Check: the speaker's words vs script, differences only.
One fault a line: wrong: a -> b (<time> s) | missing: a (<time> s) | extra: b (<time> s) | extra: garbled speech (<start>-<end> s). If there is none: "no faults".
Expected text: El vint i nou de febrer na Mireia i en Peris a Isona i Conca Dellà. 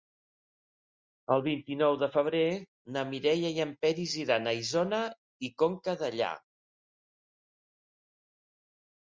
extra: iran (4.2 s)